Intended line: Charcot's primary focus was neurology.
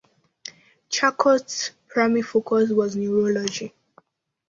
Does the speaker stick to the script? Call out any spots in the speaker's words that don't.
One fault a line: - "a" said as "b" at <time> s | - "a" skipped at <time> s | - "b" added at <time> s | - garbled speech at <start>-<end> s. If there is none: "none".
none